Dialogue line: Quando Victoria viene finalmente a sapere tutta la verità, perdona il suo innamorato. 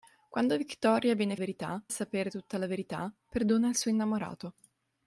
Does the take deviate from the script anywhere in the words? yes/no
yes